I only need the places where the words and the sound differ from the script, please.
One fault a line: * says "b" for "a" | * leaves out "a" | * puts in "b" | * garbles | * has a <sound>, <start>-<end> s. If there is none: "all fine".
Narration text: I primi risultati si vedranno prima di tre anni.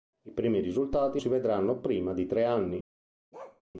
* has a bark, 3.3-3.6 s